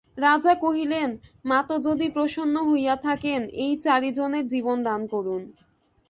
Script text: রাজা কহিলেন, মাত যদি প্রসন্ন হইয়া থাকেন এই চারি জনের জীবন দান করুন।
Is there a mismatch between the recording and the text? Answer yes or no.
no